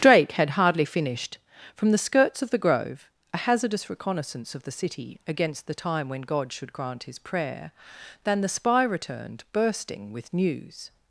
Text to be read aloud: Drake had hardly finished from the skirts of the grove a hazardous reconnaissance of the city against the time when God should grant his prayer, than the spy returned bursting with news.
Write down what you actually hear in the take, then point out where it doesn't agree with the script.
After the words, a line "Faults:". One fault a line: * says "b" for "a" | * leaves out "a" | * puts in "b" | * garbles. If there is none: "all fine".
Drake had hardly finished from the skirts of the grove a hazardous reconnaissance of the city against the time when God should grant his prayer, than the spy returned bursting with news.
Faults:
all fine